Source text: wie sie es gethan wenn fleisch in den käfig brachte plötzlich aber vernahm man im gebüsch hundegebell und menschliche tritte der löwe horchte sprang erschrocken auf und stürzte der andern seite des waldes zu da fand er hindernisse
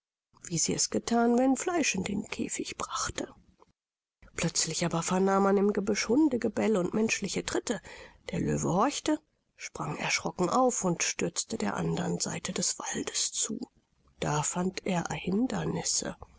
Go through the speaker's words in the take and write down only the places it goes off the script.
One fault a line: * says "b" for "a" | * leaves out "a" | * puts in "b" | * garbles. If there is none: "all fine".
all fine